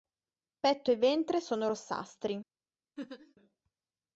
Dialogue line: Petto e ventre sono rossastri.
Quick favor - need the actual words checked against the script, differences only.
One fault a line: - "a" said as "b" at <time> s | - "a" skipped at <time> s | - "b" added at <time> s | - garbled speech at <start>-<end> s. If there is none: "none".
none